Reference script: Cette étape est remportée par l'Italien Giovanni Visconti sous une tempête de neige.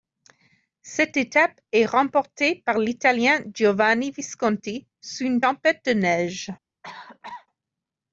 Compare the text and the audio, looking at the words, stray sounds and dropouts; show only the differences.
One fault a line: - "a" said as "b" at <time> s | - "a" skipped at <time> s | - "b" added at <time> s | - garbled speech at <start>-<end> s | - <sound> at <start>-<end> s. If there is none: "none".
- cough at 6.8-7.5 s